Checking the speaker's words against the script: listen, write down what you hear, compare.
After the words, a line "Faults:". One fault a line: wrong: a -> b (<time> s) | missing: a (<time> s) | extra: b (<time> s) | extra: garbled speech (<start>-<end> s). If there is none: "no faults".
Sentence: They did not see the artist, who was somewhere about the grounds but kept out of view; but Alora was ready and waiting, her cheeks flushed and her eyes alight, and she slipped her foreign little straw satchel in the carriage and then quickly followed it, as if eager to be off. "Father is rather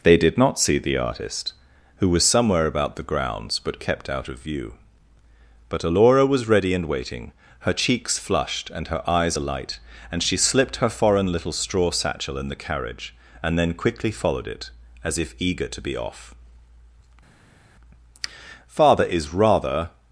They did not see the artist, who was somewhere about the grounds but kept out of view; but Alora was ready and waiting, her cheeks flushed and her eyes alight, and she slipped her foreign little straw satchel in the carriage and then quickly followed it, as if eager to be off. "Father is rather
Faults:
no faults